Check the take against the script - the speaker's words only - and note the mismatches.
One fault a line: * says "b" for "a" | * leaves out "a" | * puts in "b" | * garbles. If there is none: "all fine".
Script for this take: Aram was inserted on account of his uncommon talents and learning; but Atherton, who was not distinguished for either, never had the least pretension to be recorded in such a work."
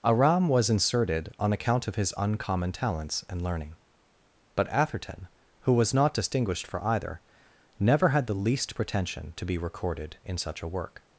all fine